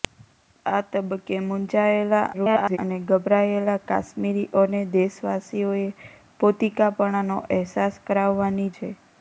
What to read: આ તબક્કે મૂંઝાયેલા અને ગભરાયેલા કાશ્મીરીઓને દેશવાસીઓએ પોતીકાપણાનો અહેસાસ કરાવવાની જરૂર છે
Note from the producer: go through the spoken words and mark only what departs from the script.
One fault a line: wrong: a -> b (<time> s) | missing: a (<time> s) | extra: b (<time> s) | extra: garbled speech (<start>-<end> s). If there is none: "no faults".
extra: garbled speech (2.3-2.8 s)
missing: જરૂર (8.7 s)